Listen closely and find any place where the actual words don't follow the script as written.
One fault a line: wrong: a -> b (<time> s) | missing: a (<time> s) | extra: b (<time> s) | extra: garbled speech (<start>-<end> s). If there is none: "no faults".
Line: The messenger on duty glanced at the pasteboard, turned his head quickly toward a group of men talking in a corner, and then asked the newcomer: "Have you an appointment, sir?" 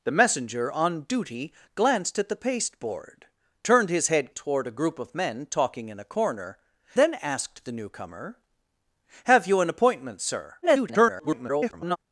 missing: quickly (4.3 s)
missing: and (6.6 s)
extra: garbled speech (10.6-12.0 s)